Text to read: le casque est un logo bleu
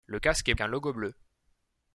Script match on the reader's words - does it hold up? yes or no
yes